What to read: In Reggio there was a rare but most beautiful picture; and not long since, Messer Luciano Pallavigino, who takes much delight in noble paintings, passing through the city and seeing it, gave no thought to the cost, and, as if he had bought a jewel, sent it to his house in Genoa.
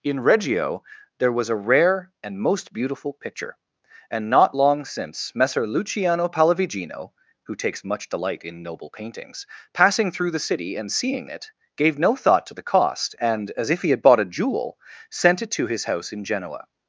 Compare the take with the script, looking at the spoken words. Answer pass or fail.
fail